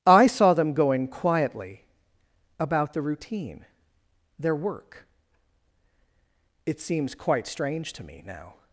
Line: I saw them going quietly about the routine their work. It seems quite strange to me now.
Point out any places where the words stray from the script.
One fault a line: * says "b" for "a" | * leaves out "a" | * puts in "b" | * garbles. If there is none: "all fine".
all fine